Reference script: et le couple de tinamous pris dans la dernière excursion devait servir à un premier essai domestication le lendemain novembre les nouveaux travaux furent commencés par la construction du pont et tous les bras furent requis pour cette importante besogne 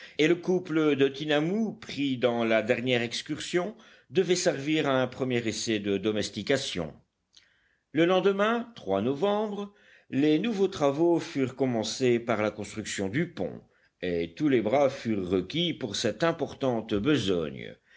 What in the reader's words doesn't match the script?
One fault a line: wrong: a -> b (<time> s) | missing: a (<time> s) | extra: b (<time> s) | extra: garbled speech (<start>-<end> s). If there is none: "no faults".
extra: de (5.8 s)